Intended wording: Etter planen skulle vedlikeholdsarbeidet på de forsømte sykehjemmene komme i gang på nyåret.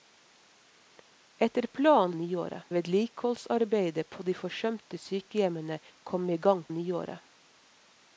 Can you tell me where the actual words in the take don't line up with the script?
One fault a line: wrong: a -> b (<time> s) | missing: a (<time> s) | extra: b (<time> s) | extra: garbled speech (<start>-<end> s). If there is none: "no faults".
wrong: skulle -> nyåret (2.1 s)
missing: på (6.6 s)